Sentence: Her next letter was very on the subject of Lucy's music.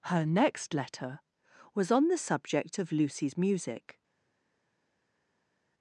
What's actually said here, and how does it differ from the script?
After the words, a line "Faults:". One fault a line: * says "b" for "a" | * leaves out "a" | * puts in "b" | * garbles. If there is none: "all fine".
Her next letter was on the subject of Lucy's music.
Faults:
* leaves out "very"